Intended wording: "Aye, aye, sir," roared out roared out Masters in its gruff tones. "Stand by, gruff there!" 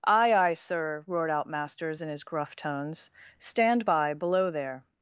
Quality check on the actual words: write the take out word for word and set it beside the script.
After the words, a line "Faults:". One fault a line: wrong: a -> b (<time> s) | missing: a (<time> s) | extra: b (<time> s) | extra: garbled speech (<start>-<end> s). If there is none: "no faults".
"Aye, aye, sir," roared out Masters in his gruff tones. "Stand by, below there!"
Faults:
missing: roared out (1.4 s)
wrong: its -> his (2.1 s)
wrong: gruff -> below (4.1 s)